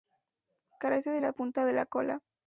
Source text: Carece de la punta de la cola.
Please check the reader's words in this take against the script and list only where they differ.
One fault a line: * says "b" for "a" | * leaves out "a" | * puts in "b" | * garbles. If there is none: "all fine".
all fine